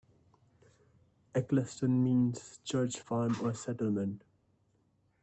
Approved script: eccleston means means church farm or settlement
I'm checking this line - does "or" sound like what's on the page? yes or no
yes